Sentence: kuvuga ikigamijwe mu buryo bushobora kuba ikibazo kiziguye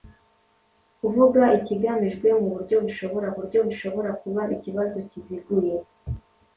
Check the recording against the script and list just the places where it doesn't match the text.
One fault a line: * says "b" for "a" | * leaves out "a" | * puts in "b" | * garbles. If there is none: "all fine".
* puts in "buryo bushobora"